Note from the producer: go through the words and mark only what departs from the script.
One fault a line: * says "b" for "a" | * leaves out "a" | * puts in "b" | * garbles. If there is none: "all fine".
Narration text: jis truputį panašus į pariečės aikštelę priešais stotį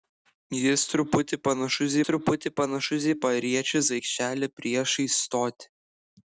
* puts in "truputį panašus"